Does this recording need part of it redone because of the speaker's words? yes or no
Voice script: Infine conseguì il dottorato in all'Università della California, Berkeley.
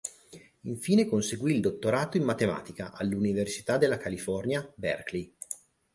yes